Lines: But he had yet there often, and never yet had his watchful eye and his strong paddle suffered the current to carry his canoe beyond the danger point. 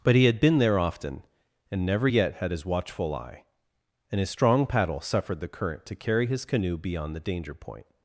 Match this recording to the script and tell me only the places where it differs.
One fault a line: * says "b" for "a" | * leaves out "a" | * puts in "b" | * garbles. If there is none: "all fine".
* says "been" for "yet"